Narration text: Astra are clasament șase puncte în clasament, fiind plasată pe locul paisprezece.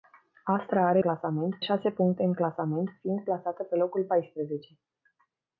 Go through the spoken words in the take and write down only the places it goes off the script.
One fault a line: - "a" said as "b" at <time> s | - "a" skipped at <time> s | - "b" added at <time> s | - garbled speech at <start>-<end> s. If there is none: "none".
none